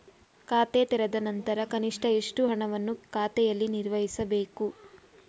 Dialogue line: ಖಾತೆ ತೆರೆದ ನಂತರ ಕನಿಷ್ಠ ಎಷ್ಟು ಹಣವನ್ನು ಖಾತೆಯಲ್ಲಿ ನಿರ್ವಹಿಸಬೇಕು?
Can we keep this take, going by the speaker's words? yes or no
yes